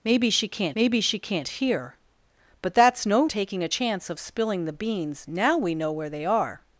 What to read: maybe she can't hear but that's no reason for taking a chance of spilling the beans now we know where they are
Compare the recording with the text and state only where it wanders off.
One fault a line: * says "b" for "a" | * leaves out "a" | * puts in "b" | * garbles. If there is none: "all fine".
* puts in "maybe she can't"
* leaves out "reason for"